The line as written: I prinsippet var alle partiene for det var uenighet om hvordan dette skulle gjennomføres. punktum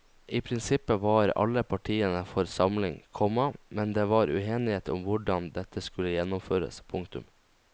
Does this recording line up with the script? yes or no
no